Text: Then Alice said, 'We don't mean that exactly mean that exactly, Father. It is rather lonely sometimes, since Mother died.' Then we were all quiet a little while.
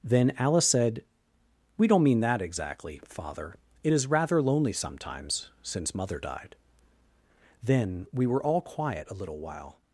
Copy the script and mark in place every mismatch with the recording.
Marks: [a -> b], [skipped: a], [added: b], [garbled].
Then Alice said, 'We don't mean that exactly [skipped: mean that exactly,] Father. It is rather lonely sometimes, since Mother died.' Then we were all quiet a little while.